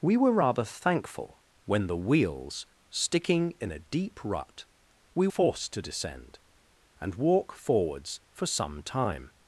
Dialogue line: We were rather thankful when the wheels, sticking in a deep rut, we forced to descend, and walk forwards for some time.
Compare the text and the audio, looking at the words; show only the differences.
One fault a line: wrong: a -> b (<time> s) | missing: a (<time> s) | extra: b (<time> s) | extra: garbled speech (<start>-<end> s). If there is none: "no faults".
no faults